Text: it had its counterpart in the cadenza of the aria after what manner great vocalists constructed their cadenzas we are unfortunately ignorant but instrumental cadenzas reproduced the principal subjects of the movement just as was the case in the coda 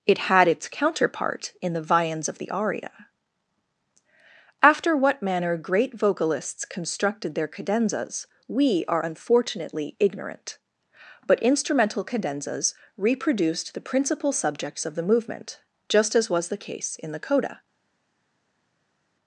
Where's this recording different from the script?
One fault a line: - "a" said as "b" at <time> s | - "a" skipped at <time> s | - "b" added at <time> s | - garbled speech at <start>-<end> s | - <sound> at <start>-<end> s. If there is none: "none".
- "cadenza" said as "viands" at 1.8 s